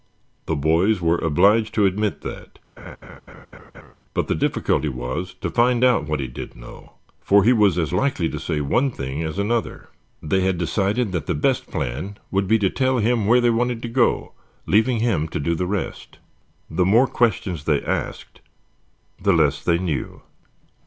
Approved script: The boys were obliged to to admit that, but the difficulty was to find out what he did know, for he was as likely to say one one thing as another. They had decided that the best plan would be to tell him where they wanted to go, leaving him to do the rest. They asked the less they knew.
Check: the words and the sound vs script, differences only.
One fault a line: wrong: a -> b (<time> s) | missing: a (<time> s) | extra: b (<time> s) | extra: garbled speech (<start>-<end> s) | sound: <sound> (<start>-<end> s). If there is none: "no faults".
missing: to (1.9 s)
sound: laugh (2.8-3.9 s)
missing: one (8.9 s)
extra: The more questions (16.7 s)